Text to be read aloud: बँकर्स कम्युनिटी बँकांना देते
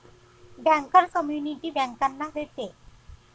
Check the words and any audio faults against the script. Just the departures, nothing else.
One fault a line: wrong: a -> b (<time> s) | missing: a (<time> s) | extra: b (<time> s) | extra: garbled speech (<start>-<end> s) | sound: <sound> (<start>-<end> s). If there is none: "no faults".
no faults